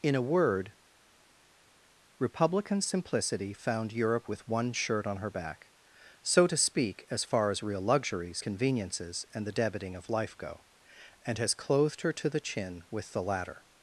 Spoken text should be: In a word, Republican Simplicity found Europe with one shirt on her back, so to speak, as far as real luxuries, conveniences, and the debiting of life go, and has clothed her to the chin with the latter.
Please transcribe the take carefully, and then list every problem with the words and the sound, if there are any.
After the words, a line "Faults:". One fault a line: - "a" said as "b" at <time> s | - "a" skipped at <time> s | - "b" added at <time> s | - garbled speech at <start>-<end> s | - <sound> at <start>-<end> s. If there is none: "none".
In a word, Republican Simplicity found Europe with one shirt on her back, so to speak, as far as real luxuries, conveniences, and the debiting of life go, and has clothed her to the chin with the latter.
Faults:
none